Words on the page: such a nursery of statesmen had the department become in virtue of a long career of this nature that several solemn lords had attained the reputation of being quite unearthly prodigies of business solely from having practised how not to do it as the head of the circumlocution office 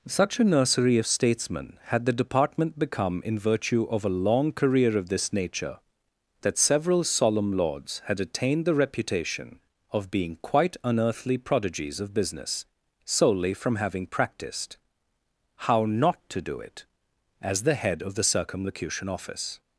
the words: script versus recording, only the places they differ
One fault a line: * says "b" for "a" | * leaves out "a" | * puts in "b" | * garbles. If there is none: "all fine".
all fine